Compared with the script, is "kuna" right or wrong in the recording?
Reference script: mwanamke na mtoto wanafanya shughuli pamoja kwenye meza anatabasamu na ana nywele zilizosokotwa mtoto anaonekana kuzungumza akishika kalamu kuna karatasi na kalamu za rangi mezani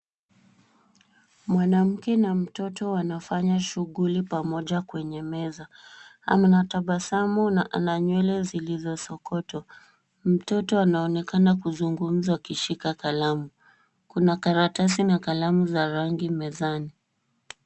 right